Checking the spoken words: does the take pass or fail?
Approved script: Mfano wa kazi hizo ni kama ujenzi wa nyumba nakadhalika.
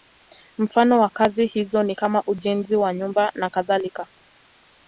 pass